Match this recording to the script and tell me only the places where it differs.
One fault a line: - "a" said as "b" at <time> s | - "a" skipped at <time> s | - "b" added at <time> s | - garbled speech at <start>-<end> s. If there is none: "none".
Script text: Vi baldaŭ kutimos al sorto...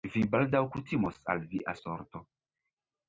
- "via" added at 1.5 s